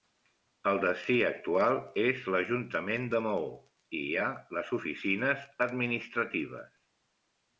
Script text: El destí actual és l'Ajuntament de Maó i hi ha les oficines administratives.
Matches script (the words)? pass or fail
pass